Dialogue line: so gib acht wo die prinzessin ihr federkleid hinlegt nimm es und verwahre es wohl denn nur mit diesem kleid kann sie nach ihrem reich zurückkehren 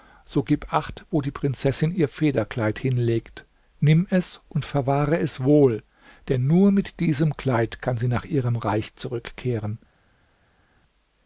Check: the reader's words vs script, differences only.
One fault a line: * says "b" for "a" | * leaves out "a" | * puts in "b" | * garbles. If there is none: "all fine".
all fine